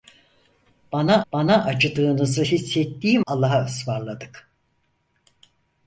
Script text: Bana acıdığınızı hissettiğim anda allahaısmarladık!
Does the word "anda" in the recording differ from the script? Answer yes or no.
yes